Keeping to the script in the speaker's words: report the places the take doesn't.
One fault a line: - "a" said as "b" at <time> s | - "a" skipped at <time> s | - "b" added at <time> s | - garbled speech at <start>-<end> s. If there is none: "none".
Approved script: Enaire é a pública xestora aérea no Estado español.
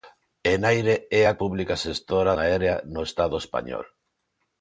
none